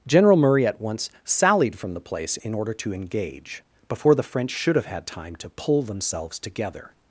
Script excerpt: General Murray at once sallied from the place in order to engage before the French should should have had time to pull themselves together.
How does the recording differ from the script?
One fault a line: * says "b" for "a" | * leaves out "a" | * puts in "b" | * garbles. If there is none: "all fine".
* leaves out "should"